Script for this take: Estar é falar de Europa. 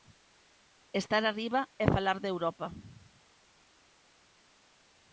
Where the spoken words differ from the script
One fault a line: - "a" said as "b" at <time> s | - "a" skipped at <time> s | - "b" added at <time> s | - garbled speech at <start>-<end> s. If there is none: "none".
- "arriba" added at 1.2 s